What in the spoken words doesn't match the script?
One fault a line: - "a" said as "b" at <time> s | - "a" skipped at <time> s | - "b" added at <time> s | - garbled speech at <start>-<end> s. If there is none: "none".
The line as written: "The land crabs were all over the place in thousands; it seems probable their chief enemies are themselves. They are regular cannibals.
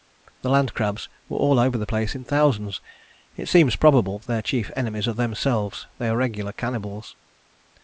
none